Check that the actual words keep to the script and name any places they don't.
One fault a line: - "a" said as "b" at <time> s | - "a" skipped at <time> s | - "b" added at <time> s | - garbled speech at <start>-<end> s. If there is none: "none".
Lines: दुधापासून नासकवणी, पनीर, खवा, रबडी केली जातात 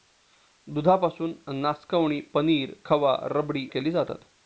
none